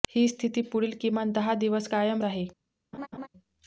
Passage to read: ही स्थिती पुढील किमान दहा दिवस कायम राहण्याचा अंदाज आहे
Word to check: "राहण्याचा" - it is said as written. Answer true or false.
false